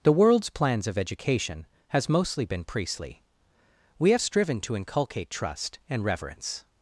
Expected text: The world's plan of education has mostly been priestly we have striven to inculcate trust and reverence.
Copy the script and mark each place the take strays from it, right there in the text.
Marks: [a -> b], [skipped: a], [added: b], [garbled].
The world's [plan -> plans] of education has mostly been priestly we have striven to inculcate trust and reverence.